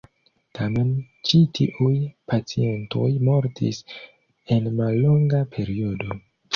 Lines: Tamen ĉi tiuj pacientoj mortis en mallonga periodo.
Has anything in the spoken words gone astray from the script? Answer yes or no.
no